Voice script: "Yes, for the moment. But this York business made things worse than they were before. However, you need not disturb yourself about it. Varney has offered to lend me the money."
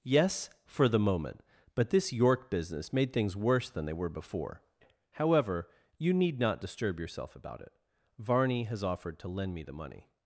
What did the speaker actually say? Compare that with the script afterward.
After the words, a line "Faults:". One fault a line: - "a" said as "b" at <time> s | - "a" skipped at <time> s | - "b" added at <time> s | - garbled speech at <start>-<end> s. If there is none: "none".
"Yes, for the moment. But this York business made things worse than they were before. However, you need not disturb yourself about it. Varney has offered to lend me the money."
Faults:
none